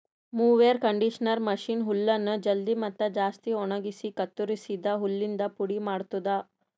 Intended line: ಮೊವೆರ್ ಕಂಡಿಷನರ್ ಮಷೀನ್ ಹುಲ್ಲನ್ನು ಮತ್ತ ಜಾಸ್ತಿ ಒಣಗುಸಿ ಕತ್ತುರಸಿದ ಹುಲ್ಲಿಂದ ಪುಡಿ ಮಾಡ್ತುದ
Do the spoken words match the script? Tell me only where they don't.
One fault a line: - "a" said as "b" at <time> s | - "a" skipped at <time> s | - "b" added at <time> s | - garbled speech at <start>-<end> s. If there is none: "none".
- "ಜಲ್ದಿ" added at 2.4 s